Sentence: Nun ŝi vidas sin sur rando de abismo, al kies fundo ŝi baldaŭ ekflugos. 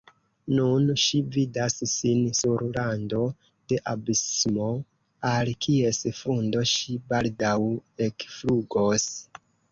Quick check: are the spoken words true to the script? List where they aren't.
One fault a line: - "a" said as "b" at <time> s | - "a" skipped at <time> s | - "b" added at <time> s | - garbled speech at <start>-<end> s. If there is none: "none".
none